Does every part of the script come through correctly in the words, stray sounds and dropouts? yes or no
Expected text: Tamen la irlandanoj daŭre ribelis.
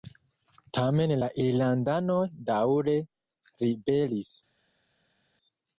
yes